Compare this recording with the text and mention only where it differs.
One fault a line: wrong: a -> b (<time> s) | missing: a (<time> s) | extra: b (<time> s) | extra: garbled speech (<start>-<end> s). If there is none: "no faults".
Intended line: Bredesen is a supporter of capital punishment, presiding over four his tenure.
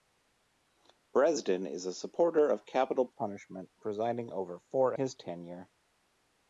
no faults